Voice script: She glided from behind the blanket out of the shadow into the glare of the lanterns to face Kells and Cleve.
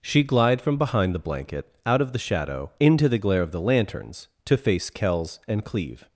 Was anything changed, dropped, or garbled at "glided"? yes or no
yes